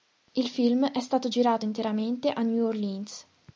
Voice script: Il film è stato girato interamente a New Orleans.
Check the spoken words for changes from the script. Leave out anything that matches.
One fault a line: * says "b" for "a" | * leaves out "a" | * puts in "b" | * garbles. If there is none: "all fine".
all fine